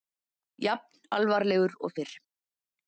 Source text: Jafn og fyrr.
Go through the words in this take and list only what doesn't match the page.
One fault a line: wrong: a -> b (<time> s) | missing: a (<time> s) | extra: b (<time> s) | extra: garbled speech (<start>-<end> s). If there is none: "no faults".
extra: alvarlegur (1.2 s)